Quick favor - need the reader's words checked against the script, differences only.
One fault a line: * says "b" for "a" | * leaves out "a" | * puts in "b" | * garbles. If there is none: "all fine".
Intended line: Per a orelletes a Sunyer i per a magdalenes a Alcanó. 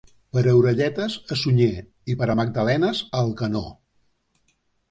all fine